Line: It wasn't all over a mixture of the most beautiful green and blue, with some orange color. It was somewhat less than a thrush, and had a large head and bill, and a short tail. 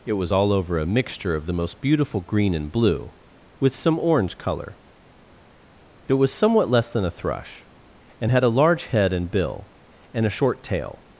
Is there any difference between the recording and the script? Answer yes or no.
yes